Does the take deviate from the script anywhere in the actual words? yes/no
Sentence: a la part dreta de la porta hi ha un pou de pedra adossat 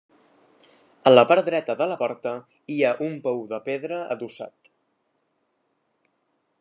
no